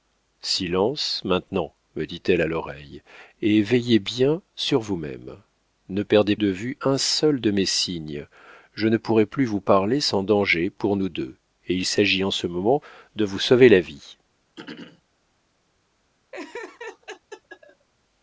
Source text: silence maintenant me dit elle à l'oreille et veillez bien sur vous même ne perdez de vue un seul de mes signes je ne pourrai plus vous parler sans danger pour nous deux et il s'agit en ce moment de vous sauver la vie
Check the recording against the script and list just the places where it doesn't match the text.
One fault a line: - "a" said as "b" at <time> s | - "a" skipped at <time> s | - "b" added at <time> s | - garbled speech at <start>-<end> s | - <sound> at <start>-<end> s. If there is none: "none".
- throat clearing at 14.6-15.0 s
- laugh at 16.3-17.9 s